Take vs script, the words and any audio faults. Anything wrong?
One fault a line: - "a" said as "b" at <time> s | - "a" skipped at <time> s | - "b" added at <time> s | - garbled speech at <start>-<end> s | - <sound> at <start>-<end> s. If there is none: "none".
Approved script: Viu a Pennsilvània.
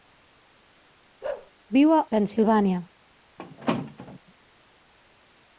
- bark at 1.2-1.5 s
- squeak at 3.4-4.2 s